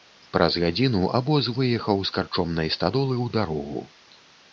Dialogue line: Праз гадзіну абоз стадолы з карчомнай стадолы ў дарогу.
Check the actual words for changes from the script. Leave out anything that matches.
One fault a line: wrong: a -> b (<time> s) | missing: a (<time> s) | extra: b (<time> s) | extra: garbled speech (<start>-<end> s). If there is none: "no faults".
wrong: стадолы -> выехаў (1.6 s)